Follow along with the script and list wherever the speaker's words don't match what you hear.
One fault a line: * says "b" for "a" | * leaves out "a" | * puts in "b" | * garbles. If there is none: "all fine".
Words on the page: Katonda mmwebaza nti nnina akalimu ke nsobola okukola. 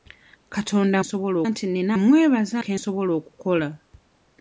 * says "nsobola" for "mmwebaza"
* says "mmwebaza" for "akalimu"